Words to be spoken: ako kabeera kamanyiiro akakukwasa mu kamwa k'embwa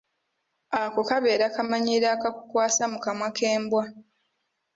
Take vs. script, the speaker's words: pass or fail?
pass